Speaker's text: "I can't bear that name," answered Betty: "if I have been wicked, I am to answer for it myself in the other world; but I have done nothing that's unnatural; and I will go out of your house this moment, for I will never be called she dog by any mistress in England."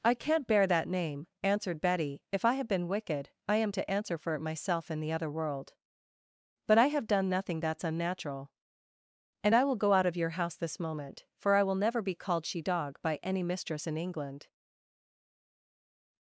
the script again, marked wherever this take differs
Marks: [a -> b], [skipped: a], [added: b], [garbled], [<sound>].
"I can't bear that name," answered Betty: "if I have been wicked, I am to answer for it myself in the other world; but I have done nothing that's unnatural; and I will go out of your house this moment, for I will never be called she dog by any mistress in England."